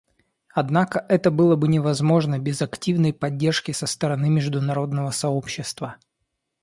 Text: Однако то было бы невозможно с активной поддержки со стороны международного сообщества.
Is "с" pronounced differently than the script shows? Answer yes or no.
yes